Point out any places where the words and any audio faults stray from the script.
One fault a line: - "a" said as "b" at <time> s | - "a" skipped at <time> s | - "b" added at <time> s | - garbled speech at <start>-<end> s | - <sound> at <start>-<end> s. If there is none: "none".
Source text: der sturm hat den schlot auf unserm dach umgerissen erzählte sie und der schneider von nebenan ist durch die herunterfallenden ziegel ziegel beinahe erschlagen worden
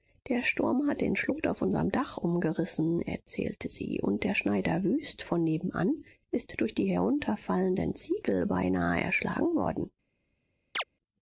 - "wüst" added at 4.9 s
- "ziegel" skipped at 8.5 s
- chirp at 10.7-10.8 s